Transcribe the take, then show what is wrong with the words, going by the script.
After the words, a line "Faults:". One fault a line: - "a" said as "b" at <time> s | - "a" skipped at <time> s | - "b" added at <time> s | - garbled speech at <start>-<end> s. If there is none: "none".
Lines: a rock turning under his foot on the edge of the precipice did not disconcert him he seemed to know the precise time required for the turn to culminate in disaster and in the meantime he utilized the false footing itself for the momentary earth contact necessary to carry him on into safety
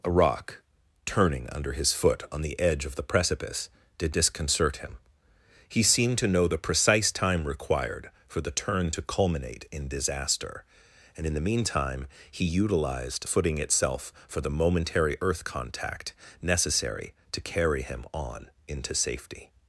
a rock turning under his foot on the edge of the precipice did disconcert him he seemed to know the precise time required for the turn to culminate in disaster and in the meantime he utilized footing itself for the momentary earth contact necessary to carry him on into safety
Faults:
- "not" skipped at 4.2 s
- "the false" skipped at 13.3 s